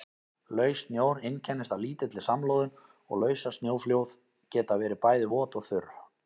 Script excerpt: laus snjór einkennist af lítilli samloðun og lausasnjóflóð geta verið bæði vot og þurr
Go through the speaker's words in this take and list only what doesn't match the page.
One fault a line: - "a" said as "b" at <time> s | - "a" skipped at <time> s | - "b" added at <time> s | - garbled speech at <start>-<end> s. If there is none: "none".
none